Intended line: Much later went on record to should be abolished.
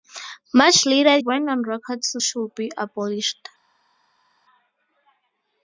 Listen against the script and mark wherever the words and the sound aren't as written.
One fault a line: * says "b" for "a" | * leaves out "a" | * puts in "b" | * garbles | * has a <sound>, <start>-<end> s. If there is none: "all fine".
all fine